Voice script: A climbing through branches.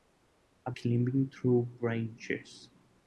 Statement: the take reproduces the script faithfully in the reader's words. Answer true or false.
true